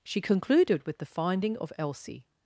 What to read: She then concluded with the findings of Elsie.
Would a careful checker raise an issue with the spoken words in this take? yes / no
yes